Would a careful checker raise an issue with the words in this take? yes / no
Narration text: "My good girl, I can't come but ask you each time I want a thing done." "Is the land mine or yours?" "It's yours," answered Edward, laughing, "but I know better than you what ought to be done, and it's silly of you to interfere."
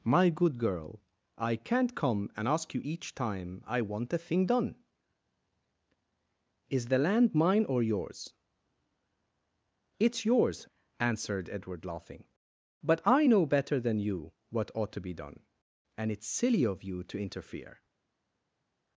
yes